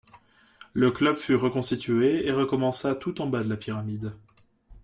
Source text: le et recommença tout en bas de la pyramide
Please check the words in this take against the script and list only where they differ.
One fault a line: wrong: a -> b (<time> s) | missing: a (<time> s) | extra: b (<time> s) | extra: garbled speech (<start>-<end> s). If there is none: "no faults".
extra: club fut reconstitué (0.9 s)